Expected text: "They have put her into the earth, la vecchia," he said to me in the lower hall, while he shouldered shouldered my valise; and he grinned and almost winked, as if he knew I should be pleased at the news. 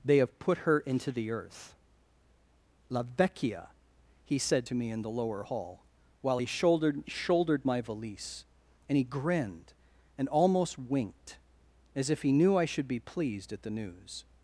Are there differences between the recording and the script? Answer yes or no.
no